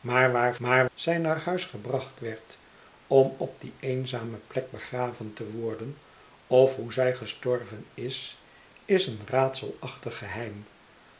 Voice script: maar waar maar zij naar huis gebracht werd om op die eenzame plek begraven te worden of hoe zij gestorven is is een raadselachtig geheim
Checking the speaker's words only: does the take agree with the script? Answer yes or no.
yes